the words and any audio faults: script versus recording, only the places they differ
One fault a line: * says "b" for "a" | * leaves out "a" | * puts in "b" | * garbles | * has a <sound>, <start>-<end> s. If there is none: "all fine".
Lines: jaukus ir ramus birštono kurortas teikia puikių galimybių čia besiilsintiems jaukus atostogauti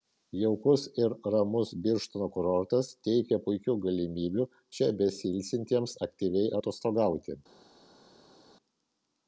* says "aktyviai" for "jaukus"